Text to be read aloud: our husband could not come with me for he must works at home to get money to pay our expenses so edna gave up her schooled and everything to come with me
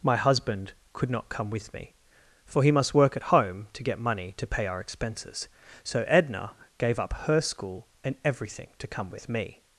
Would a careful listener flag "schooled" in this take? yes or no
yes